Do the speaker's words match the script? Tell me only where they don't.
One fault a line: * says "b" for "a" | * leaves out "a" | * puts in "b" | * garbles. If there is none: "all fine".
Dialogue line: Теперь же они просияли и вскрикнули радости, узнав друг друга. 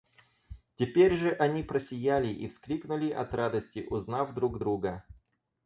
* puts in "от"